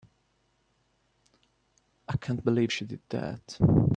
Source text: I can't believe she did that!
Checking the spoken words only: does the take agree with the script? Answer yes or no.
yes